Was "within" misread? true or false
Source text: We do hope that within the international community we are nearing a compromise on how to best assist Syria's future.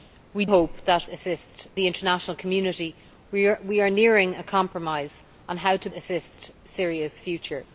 true